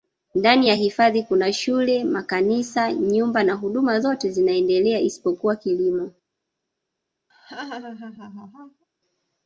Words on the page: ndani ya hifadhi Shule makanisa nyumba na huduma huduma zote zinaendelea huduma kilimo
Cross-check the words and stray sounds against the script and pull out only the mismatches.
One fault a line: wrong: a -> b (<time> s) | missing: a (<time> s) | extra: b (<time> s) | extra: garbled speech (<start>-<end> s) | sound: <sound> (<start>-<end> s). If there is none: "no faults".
extra: Kuna (1.2 s)
missing: huduma (4.0 s)
wrong: huduma -> isipokuwa (5.0 s)
sound: laugh (7.3-8.8 s)